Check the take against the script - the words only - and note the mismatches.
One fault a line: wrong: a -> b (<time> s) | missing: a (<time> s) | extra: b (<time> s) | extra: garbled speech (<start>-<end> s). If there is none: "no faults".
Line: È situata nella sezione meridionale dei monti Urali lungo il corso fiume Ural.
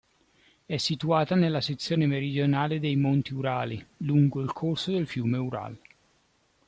extra: del (4.9 s)